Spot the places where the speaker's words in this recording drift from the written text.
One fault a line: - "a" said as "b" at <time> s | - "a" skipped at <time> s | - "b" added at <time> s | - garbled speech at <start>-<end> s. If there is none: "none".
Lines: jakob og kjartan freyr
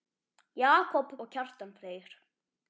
none